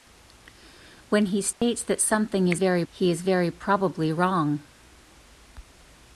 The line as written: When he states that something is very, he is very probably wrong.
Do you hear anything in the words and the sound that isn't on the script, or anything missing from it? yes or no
yes